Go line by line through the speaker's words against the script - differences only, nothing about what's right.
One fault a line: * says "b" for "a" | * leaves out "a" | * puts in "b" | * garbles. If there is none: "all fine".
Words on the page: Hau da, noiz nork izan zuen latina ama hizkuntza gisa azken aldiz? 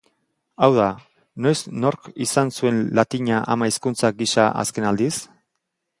all fine